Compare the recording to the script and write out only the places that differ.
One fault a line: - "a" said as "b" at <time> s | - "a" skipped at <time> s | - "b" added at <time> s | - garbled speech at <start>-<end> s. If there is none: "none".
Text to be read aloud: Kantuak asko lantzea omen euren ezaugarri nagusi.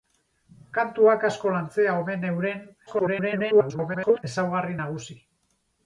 - garbled speech at 2.9-4.2 s